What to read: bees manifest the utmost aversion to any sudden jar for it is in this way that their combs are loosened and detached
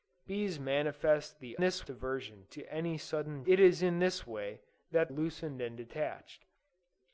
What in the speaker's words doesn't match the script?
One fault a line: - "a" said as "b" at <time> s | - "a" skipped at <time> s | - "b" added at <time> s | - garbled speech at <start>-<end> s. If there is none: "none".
- "utmost" said as "this" at 1.6 s
- "jar for" skipped at 3.4 s
- "their combs are" skipped at 5.1 s